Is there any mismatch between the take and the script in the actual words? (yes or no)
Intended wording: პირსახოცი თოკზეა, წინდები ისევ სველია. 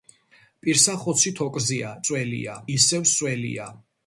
yes